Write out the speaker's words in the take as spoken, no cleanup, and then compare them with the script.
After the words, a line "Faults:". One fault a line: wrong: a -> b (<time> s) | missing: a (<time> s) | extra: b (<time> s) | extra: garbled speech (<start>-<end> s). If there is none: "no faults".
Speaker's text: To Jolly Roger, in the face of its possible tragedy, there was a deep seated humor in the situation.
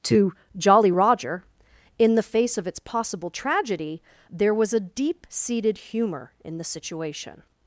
To Jolly Roger, in the face of its possible tragedy, there was a deep seated humor in the situation.
Faults:
no faults